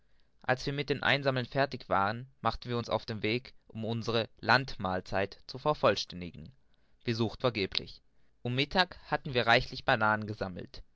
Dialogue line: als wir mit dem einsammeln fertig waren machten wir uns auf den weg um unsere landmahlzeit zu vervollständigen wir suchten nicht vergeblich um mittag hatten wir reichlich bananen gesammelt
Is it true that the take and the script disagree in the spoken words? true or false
true